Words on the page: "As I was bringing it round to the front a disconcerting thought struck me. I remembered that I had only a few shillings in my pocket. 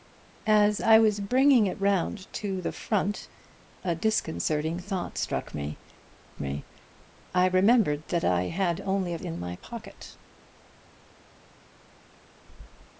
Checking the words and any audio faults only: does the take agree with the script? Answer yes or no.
no